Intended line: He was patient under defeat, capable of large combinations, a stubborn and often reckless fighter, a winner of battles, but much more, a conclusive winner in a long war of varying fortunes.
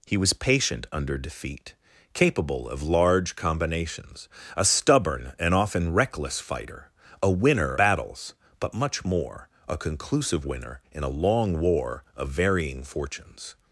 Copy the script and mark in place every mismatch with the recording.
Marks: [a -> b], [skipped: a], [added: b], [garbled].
He was patient under defeat, capable of large combinations, a stubborn and often reckless fighter, a winner [skipped: of] battles, but much more, a conclusive winner in a long war of varying fortunes.